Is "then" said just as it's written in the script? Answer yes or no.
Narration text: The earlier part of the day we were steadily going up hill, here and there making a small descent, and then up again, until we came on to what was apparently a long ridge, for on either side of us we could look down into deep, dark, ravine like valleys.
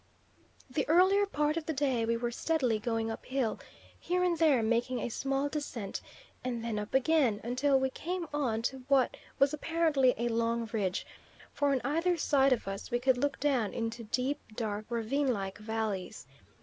yes